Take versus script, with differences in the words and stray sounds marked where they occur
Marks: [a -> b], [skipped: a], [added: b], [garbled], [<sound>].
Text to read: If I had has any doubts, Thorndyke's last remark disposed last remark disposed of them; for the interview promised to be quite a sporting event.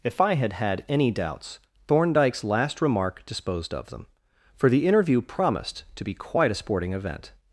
If I had [has -> had] any doubts, Thorndyke's last remark disposed [skipped: last remark disposed] of them; for the interview promised to be quite a sporting event.